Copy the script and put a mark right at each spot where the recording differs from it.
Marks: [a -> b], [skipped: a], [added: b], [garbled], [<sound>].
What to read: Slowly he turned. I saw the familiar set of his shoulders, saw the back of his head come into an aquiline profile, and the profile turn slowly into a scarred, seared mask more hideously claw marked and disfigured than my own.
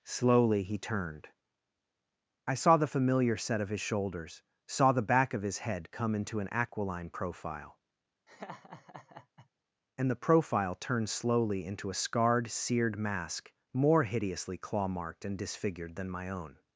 Slowly he turned. I saw the familiar set of his shoulders, saw the back of his head come into an aquiline profile, [laugh] and the profile [turn -> turned] slowly into a scarred, seared mask more hideously claw marked and disfigured than my own.